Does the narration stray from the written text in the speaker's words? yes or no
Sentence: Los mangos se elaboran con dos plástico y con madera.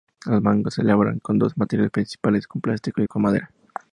yes